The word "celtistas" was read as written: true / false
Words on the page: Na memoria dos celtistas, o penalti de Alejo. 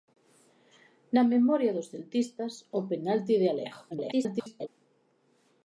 true